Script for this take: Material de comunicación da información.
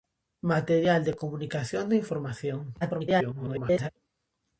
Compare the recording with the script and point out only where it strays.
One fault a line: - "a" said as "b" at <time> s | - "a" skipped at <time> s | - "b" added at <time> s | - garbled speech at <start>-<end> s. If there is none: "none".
- garbled speech at 2.8-3.9 s